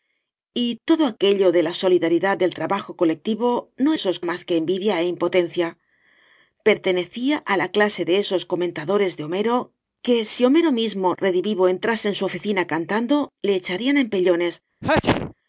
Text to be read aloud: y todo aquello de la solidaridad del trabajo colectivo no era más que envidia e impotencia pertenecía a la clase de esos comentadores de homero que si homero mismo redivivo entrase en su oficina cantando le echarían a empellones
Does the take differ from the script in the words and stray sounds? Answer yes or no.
yes